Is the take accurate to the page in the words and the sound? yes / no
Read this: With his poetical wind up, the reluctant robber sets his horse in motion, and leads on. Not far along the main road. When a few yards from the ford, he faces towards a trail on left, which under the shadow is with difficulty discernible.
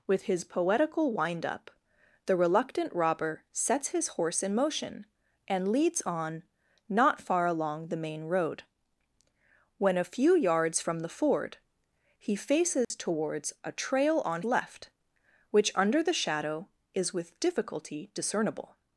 no